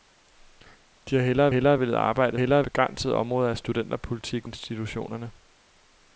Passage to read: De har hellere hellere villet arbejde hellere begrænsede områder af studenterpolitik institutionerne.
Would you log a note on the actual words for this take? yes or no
no